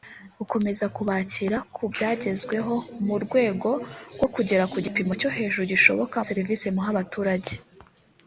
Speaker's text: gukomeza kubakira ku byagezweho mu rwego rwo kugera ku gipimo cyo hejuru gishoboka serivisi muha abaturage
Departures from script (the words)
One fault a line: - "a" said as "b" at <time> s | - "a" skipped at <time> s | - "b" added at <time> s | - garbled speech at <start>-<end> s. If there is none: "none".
none